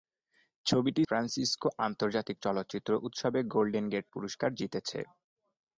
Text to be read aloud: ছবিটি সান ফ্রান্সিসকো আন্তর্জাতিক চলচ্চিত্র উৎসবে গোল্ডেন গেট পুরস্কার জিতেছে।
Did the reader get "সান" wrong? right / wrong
wrong